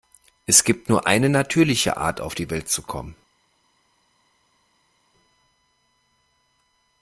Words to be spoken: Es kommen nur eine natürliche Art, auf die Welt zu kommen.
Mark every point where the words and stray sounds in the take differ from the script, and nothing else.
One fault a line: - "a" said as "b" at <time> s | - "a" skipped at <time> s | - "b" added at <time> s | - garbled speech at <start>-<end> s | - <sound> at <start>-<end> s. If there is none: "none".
- "kommen" said as "gibt" at 0.6 s